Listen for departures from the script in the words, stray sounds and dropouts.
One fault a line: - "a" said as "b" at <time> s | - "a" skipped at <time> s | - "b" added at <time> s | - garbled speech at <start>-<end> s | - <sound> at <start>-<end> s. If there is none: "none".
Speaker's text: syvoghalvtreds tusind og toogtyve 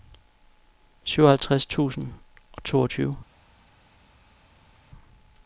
none